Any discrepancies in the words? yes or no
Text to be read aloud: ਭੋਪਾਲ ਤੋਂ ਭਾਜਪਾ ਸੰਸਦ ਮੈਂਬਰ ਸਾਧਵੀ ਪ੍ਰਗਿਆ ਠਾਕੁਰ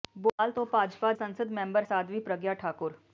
no